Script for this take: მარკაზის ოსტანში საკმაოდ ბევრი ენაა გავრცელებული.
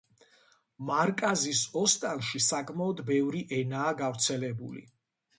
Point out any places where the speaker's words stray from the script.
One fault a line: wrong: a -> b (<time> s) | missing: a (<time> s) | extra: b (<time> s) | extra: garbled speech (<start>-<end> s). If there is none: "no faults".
no faults